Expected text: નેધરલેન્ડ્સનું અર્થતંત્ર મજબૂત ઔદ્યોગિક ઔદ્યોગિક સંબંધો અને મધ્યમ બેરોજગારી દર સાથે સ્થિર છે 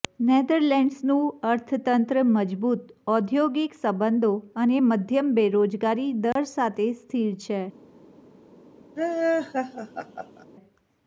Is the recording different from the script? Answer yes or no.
yes